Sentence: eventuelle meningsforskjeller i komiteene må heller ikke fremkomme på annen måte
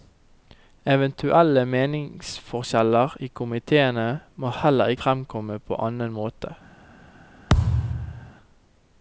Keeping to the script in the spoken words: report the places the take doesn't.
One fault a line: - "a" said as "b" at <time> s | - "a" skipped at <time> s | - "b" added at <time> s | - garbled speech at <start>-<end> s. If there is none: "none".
- "ikke" skipped at 4.9 s